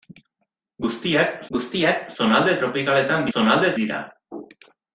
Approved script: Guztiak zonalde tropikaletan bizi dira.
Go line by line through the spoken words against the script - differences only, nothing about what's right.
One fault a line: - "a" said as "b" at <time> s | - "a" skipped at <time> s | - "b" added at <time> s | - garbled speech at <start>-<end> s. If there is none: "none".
- "guztiak" added at 1.6 s
- "bizi" said as "zonalde" at 3.3 s